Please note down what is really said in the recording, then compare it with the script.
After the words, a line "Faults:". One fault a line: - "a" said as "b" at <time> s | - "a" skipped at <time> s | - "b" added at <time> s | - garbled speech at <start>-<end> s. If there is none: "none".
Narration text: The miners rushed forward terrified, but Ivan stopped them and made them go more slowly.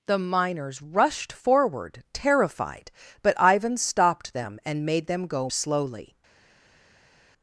The miners rushed forward terrified, but Ivan stopped them and made them go slowly.
Faults:
- "more" skipped at 5.5 s